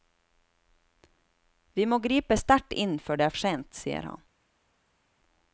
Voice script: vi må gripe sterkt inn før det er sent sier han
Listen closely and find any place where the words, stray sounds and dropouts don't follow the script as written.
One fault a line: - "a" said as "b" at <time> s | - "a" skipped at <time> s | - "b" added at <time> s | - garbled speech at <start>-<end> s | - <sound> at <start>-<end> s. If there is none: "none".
none